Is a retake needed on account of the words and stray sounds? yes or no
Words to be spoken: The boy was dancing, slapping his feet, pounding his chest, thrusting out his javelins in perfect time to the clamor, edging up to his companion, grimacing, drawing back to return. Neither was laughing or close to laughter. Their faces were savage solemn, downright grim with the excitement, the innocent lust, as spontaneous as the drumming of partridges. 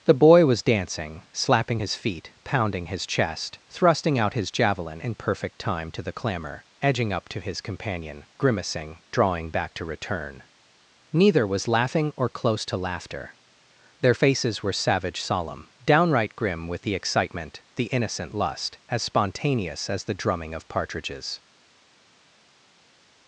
yes